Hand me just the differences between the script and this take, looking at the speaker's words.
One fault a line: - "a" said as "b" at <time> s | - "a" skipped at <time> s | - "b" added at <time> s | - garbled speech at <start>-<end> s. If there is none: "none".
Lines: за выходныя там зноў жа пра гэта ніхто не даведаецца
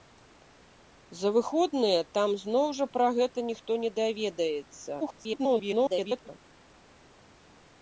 - garbled speech at 5.0-6.3 s